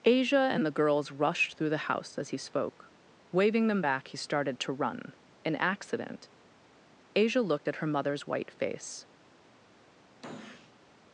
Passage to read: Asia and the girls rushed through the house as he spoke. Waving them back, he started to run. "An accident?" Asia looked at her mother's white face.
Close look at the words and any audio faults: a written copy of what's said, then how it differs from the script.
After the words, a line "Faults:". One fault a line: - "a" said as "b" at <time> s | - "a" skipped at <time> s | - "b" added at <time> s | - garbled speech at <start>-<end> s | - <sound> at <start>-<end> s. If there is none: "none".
Asia and the girls rushed through the house as he spoke. Waving them back, he started to run. "An accident?" Asia looked at her mother's white face.
Faults:
- sniff at 10.2-10.8 s